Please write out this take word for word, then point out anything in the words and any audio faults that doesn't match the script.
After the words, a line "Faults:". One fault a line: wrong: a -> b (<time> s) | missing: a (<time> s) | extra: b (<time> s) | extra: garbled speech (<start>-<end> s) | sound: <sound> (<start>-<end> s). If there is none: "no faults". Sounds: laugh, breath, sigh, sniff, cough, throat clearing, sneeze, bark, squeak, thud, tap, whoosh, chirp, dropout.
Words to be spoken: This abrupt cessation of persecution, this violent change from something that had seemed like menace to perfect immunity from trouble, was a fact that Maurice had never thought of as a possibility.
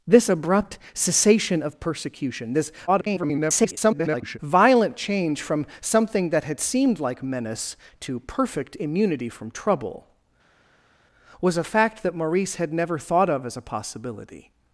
This abrupt cessation of persecution, this [garbled] violent change from something that had seemed like menace to perfect immunity from trouble, was a fact that Maurice had never thought of as a possibility.
Faults:
extra: garbled speech (2.9-4.4 s)